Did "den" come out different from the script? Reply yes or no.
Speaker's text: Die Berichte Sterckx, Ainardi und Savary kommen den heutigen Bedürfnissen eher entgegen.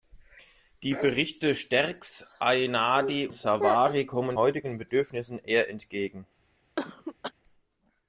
yes